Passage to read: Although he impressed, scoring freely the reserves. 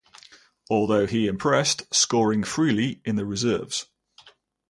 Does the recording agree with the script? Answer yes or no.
no